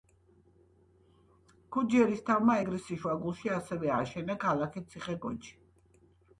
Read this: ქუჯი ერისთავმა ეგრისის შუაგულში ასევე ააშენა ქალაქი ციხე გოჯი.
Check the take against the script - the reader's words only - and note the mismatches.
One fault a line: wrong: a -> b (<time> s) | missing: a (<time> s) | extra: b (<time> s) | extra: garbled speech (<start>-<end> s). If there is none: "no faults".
no faults